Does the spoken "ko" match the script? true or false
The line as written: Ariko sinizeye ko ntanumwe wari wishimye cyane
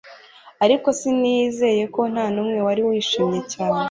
true